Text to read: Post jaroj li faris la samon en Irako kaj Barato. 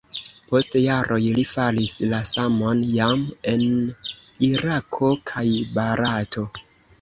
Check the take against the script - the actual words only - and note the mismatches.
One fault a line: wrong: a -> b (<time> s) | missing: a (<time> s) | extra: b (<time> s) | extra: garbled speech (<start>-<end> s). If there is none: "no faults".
extra: jam (2.9 s)